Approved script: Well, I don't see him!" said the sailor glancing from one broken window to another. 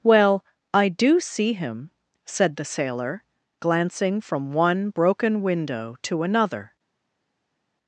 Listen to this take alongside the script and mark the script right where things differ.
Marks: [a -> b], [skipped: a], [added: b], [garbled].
Well, I [don't -> do] see him!" said the sailor glancing from one broken window to another.